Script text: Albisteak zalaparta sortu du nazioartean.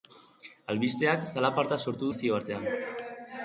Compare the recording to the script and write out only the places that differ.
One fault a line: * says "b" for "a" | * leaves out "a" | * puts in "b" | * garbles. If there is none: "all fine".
* leaves out "du"